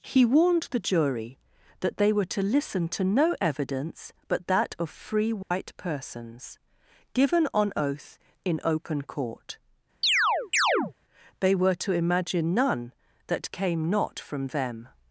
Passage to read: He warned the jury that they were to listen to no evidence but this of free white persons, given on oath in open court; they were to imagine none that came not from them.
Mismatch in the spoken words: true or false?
true